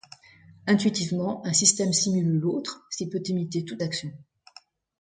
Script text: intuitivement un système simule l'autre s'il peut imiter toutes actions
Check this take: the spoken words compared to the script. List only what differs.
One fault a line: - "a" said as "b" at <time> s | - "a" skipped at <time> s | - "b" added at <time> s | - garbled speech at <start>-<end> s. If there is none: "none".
none